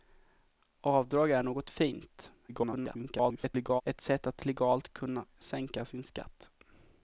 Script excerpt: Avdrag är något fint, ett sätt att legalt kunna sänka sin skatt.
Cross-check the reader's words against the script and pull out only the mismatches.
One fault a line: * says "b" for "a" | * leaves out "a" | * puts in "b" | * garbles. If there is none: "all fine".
* garbles